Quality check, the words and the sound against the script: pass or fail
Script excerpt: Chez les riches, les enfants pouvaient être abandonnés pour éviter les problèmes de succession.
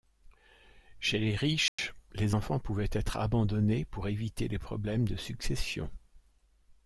fail